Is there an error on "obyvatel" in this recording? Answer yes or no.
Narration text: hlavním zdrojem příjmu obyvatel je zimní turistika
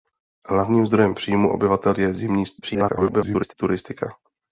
no